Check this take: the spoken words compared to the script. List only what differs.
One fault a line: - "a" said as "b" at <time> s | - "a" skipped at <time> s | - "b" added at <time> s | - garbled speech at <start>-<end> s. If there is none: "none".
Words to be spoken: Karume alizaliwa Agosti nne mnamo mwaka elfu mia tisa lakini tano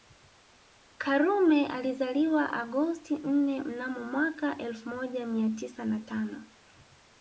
- "moja" added at 4.9 s
- "lakini" said as "na" at 5.8 s